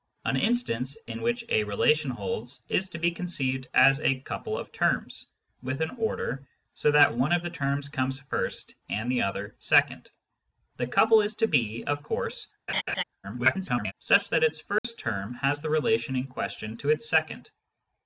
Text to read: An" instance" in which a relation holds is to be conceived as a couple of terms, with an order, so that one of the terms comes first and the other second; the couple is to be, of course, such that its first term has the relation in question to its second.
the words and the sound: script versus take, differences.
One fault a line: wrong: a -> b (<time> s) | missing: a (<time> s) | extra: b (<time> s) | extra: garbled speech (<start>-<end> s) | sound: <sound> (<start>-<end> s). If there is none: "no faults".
sound: laugh (12.7-13.0 s)
extra: garbled speech (13.2-13.9 s)
sound: dropout (14.8-14.8 s)